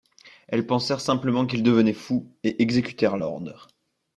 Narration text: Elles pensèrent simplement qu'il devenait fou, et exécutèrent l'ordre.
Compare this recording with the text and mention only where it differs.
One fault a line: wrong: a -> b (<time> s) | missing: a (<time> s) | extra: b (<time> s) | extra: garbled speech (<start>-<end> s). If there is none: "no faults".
no faults